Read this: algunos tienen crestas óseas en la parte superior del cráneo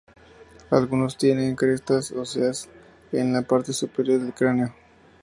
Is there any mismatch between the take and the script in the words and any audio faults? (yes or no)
no